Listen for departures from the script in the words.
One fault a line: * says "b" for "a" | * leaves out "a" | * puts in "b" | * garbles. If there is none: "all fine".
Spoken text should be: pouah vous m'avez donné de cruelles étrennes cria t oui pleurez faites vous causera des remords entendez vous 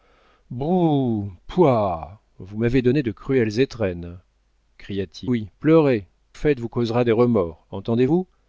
all fine